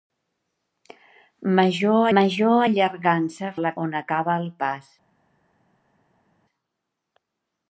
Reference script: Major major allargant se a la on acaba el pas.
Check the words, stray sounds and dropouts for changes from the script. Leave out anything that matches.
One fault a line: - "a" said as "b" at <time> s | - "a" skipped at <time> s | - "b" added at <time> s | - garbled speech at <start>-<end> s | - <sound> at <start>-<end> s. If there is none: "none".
none